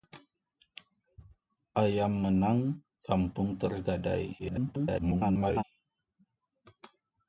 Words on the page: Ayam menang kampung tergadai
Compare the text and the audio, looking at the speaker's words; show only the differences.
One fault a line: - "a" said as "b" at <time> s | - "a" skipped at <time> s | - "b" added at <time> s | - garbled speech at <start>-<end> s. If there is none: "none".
- garbled speech at 4.4-5.6 s